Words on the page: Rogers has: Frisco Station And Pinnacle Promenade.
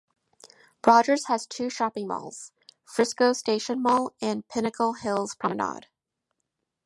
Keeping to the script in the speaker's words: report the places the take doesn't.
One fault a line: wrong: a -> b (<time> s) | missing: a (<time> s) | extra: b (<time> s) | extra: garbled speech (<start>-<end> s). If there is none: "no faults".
extra: two shopping malls (1.4 s)
extra: Mall (3.8 s)
extra: Hills (4.9 s)